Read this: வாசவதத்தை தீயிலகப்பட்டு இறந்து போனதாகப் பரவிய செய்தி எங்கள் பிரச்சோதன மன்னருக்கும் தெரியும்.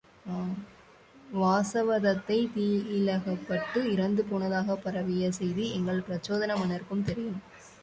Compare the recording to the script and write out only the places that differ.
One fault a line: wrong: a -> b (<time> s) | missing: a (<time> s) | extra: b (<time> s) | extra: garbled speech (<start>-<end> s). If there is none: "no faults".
no faults